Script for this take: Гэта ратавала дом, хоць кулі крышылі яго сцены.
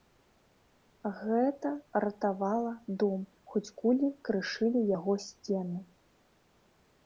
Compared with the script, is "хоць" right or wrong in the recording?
right